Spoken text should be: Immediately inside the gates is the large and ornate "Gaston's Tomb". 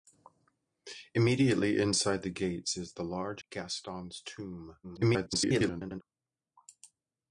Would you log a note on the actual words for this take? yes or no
yes